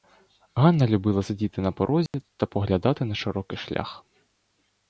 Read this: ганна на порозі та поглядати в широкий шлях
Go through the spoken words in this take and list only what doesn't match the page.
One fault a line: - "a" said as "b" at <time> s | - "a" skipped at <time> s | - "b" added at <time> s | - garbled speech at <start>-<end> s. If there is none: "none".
- "любила сидіти" added at 0.9 s
- "в" said as "на" at 3.1 s